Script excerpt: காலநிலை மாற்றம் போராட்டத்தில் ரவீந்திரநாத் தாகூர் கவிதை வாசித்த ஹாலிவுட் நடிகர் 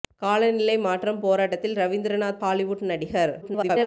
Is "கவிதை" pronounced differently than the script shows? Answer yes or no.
yes